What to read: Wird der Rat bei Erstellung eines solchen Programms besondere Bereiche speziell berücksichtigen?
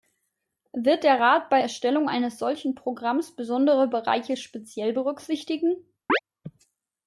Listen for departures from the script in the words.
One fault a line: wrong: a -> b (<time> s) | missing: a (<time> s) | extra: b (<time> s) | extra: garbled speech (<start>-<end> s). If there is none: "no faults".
no faults